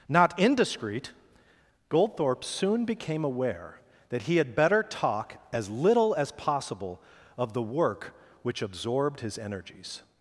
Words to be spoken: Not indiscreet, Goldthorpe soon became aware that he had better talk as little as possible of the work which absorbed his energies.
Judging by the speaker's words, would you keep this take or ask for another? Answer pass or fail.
pass